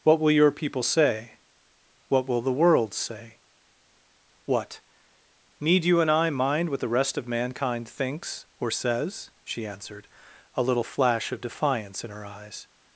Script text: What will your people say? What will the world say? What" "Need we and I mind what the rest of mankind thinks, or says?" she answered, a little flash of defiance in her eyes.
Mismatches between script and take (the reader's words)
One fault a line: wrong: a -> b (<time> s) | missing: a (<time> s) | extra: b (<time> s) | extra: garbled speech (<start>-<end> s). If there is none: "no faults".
wrong: we -> you (5.8 s)